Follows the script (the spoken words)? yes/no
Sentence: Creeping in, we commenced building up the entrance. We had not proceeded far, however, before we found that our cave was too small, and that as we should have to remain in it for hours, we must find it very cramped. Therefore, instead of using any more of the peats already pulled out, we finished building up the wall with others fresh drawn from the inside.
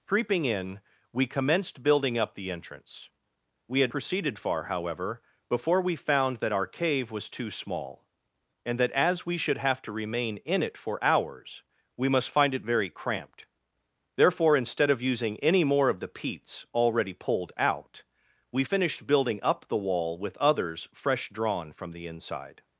no